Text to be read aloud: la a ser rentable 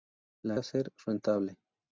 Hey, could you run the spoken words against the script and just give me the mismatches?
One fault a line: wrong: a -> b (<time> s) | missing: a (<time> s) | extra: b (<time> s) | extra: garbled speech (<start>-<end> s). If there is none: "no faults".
no faults